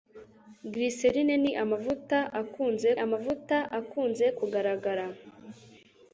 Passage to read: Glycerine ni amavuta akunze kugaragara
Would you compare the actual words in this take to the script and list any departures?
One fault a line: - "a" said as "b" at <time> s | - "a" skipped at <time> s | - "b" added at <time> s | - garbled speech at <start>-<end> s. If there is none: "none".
- "amavuta akunze" added at 3.0 s